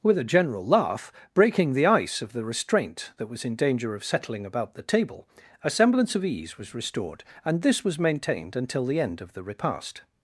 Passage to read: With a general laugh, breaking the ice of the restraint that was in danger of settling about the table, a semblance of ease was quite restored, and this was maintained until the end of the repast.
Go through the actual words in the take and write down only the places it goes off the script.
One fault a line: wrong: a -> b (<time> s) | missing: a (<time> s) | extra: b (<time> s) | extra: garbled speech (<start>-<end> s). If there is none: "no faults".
missing: quite (6.7 s)